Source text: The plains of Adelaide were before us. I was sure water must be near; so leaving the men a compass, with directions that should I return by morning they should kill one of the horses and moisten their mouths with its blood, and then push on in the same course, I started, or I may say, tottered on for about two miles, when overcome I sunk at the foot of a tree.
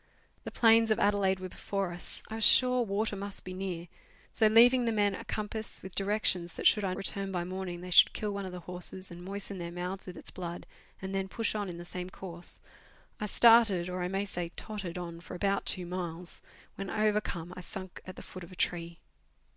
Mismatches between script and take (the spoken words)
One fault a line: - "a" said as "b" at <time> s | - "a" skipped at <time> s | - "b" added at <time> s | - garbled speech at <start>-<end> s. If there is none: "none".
none